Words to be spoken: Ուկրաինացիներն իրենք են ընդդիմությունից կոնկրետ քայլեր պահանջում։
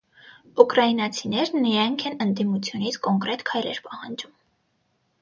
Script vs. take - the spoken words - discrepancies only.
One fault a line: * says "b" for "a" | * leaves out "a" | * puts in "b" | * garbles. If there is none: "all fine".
all fine